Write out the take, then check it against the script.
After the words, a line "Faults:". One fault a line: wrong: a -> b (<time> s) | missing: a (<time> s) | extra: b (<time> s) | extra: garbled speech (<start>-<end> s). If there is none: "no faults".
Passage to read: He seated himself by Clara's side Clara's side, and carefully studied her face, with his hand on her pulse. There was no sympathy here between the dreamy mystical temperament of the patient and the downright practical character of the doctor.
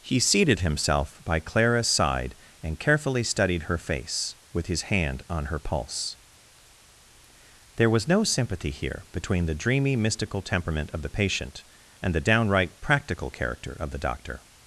He seated himself by Clara's side, and carefully studied her face, with his hand on her pulse. There was no sympathy here between the dreamy mystical temperament of the patient and the downright practical character of the doctor.
Faults:
missing: Clara's side (2.3 s)